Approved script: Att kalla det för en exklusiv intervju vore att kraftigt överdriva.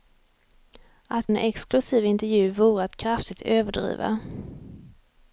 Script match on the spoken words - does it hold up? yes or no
no